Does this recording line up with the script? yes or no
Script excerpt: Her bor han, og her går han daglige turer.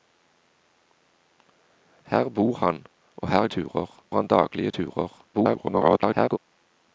no